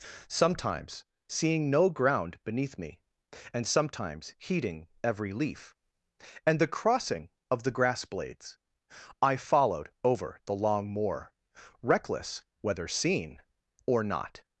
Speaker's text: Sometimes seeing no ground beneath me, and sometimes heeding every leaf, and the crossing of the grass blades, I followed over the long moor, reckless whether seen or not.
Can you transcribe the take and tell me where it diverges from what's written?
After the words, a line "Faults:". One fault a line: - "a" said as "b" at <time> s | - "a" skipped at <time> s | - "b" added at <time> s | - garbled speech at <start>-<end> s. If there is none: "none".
Sometimes seeing no ground beneath me, and sometimes heeding every leaf, and the crossing of the grass blades, I followed over the long moor, reckless whether seen or not.
Faults:
none